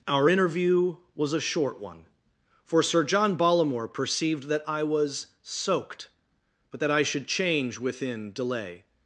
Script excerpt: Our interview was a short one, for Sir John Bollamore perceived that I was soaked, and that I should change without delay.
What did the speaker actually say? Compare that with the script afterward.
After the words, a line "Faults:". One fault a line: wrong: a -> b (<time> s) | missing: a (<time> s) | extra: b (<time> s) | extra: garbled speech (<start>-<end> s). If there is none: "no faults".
Our interview was a short one, for Sir John Bollamore perceived that I was soaked, but that I should change within delay.
Faults:
wrong: and -> but (6.7 s)
wrong: without -> within (7.8 s)